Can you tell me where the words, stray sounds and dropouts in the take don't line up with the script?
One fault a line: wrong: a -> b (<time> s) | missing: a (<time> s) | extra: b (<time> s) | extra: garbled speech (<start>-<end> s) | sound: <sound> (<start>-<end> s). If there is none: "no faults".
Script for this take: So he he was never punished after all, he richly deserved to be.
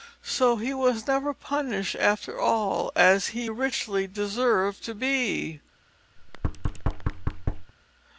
missing: he (0.7 s)
extra: as (3.0 s)
sound: thud (6.2-7.7 s)